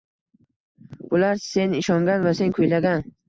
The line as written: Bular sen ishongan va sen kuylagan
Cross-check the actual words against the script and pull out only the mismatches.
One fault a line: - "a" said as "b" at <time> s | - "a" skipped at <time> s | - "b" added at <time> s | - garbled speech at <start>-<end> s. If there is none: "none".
none